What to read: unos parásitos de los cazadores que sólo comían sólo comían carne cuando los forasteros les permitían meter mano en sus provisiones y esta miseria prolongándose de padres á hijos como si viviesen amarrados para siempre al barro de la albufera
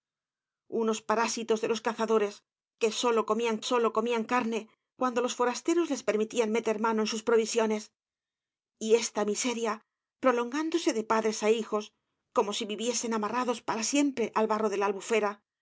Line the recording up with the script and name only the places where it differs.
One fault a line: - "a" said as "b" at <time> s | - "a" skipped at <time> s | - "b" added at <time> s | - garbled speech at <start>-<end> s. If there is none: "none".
none